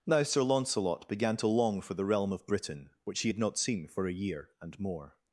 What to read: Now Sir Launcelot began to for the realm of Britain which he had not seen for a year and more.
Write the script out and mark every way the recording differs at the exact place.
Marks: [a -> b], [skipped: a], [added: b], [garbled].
Now Sir Launcelot began to [added: long] for the realm of Britain which he had not seen for a year and more.